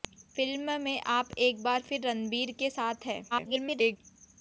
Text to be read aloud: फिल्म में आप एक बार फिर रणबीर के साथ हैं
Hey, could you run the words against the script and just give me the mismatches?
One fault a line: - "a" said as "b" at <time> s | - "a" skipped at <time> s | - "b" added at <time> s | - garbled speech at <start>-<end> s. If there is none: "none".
- garbled speech at 3.3-4.0 s